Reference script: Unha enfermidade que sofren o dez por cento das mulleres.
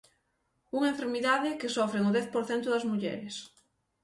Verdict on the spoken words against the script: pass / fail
pass